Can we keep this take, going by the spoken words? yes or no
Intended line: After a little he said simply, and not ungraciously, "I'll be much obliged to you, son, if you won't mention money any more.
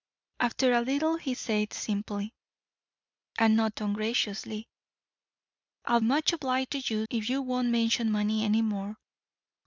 no